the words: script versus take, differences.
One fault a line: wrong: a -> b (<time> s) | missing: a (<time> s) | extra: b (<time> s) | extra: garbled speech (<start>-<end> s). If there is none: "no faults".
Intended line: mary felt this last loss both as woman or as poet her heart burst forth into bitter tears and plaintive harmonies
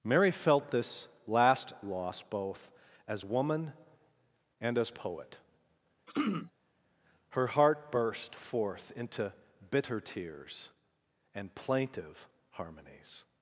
wrong: or -> and (4.6 s)